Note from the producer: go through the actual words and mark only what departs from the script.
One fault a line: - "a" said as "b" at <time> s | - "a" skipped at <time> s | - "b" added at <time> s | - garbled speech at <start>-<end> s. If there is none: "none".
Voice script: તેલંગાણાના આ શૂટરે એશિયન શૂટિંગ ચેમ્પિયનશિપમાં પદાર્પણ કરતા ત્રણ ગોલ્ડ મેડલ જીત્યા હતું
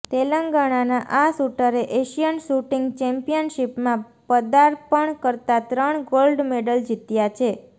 - "હતું" said as "છે" at 7.4 s